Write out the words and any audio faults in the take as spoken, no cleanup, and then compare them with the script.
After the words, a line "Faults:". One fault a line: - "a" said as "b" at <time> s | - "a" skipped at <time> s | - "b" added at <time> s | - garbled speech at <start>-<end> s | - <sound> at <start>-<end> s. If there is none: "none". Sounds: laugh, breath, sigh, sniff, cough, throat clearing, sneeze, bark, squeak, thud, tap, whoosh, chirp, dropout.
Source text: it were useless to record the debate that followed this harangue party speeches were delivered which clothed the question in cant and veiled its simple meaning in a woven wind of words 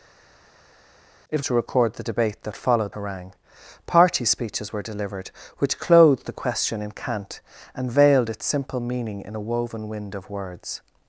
it to record the debate that followed harangue party speeches were delivered which clothed the question in cant and veiled its simple meaning in a woven wind of words
Faults:
- "were useless" skipped at 1.4 s
- "this" skipped at 2.9 s